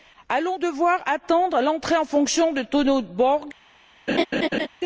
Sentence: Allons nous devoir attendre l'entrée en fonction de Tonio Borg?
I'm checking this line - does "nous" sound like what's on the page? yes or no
no